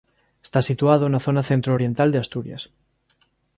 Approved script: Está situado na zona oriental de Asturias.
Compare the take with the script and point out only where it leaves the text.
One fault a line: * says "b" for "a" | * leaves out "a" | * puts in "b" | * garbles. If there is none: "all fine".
* puts in "centro"